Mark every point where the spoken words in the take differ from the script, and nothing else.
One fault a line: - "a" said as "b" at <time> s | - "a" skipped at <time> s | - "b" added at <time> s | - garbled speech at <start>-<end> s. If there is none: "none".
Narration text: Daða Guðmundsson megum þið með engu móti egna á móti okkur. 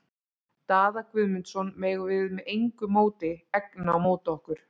- "þið" said as "við" at 2.1 s